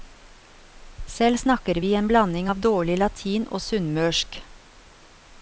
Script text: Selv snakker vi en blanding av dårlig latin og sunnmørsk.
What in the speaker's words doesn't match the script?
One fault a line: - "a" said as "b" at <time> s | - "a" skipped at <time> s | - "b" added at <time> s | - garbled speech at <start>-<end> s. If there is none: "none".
none